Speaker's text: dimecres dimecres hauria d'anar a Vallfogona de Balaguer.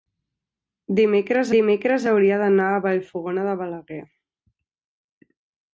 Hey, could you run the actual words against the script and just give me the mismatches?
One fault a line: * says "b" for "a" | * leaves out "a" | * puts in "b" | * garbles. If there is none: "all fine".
all fine